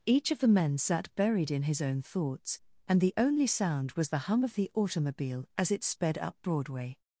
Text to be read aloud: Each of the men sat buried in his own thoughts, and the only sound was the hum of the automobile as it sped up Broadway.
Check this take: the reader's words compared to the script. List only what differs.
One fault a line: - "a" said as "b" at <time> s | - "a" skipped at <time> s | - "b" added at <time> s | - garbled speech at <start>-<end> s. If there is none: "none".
none